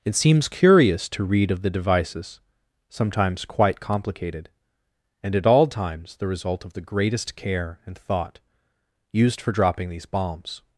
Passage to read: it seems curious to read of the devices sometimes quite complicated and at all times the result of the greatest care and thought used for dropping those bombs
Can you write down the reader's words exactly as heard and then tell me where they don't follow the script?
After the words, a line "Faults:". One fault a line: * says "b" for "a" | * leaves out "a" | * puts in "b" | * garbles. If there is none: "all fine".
it seems curious to read of the devices sometimes quite complicated and at all times the result of the greatest care and thought used for dropping these bombs
Faults:
* says "these" for "those"